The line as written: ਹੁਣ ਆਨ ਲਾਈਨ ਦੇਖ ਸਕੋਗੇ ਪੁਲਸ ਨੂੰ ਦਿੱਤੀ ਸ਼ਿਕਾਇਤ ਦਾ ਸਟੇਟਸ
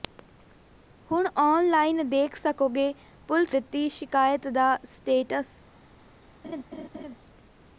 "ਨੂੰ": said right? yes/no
no